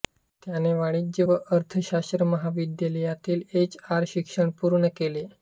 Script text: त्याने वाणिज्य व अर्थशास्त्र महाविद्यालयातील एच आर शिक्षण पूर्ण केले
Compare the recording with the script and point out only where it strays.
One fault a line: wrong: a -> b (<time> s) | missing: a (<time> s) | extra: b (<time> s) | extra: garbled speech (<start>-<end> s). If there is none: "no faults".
no faults